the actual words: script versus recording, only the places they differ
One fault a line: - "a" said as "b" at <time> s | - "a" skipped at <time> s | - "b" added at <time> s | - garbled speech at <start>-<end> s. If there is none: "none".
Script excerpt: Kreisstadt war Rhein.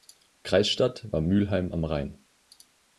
- "Mülheim am" added at 1.2 s